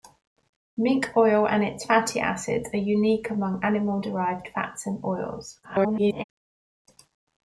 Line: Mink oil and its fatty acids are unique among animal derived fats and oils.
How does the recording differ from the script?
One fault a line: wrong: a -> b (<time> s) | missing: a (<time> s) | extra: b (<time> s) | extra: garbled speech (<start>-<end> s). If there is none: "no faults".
extra: garbled speech (5.6-6.2 s)